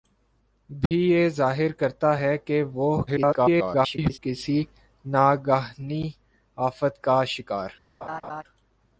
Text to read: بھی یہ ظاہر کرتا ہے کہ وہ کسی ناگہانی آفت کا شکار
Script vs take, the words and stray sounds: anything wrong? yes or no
yes